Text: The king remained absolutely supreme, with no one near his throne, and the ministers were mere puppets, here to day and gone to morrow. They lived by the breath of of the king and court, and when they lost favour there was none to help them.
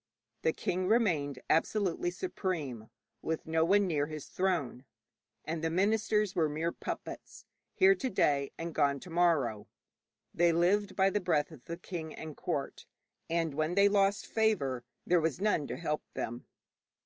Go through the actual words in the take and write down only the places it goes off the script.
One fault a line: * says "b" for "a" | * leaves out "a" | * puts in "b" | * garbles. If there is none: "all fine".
* leaves out "of"